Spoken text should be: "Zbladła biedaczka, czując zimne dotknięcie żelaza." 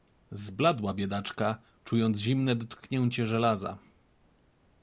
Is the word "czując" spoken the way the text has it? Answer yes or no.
yes